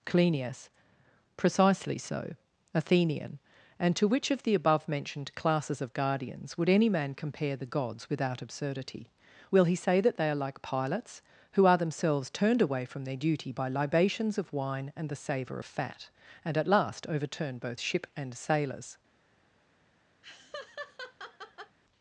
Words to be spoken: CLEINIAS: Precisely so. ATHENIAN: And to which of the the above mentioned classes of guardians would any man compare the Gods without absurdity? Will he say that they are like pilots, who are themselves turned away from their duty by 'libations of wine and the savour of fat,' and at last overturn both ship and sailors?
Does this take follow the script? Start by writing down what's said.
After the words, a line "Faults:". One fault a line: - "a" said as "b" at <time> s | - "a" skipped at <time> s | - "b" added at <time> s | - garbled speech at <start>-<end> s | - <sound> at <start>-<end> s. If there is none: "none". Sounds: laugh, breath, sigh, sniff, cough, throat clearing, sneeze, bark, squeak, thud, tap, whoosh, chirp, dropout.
CLEINIAS: Precisely so. ATHENIAN: And to which of the above mentioned classes of guardians would any man compare the Gods without absurdity? Will he say that they are like pilots, who are themselves turned away from their duty by 'libations of wine and the savour of fat,' and at last overturn both ship and sailors?
Faults:
- "the" skipped at 4.5 s
- laugh at 20.2-21.8 s